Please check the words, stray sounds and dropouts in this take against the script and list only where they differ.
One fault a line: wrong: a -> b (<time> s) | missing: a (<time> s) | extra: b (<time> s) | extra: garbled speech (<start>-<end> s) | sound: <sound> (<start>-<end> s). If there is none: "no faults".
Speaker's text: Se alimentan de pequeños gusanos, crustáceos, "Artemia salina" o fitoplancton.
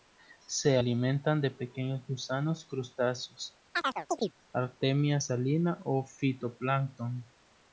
sound: chirp (3.7-4.3 s)